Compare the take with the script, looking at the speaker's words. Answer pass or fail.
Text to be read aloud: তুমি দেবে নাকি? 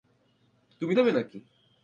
pass